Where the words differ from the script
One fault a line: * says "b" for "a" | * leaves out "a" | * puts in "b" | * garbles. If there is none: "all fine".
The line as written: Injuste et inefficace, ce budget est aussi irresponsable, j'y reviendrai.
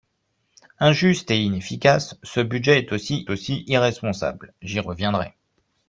* puts in "aussi"